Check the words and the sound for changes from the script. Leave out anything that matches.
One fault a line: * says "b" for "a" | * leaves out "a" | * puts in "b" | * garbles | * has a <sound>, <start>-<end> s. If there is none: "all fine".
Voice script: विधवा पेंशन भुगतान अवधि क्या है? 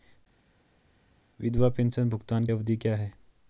all fine